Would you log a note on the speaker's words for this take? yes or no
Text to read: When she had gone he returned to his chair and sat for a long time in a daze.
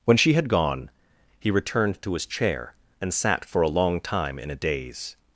no